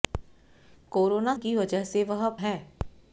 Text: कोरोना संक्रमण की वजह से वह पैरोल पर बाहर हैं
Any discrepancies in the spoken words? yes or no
yes